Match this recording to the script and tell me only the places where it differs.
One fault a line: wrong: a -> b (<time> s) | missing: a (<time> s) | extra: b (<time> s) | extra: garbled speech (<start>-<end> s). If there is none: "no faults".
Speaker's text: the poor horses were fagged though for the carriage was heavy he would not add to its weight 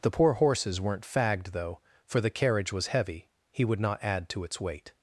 wrong: were -> weren't (0.8 s)